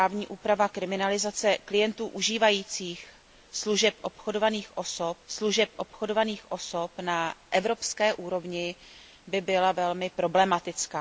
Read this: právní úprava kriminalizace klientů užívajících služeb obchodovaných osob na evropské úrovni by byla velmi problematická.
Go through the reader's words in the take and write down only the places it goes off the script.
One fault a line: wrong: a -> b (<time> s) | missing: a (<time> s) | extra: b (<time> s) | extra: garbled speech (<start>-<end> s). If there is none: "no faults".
extra: služeb obchodovaných osob (5.3 s)